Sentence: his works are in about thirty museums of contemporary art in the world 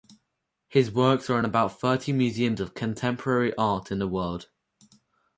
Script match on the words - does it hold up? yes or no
yes